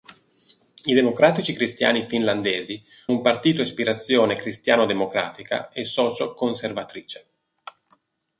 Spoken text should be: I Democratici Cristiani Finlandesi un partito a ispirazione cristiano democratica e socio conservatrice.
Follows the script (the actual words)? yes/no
yes